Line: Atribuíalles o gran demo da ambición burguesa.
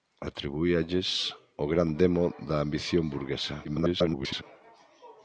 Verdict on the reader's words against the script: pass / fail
fail